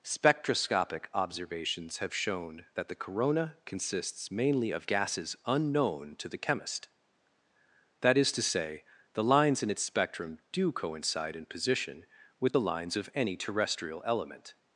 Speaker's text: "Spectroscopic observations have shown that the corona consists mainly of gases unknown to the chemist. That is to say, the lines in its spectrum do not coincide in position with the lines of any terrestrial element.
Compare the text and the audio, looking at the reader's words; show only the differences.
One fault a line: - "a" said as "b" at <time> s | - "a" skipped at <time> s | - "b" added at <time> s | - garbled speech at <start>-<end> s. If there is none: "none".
- "not" skipped at 10.7 s